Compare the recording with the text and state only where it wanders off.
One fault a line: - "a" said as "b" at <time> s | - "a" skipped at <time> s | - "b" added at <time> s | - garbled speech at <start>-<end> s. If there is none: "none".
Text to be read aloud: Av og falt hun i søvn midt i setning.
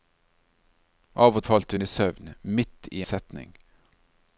none